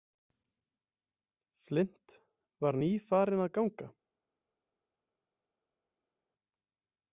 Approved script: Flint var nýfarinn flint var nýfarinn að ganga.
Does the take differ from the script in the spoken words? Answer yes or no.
yes